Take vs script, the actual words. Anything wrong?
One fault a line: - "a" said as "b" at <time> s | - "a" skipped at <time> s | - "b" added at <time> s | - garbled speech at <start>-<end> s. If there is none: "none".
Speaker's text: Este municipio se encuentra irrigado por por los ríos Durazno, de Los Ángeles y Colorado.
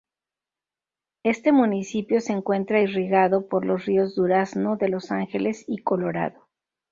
- "por" skipped at 3.6 s